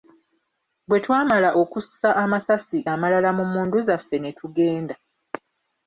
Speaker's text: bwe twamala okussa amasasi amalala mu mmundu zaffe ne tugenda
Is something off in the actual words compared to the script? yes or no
no